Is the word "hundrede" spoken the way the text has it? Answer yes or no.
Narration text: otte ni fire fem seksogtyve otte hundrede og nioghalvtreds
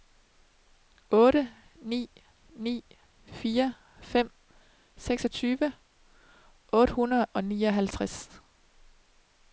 yes